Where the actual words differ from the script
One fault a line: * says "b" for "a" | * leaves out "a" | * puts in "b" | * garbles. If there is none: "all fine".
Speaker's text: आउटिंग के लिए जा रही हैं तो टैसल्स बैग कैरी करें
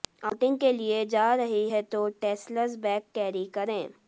all fine